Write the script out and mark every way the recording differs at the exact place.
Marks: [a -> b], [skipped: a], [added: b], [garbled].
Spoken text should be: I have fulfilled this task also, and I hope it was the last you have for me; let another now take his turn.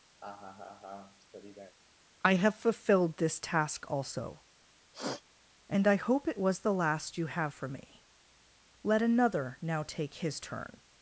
I have fulfilled this task also, and I hope it was the last you have for me; let another now take his turn.